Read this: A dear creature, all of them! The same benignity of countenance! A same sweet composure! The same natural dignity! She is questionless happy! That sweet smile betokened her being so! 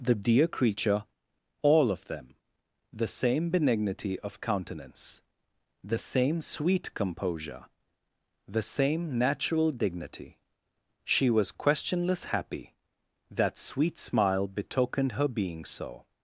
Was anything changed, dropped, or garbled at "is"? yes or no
yes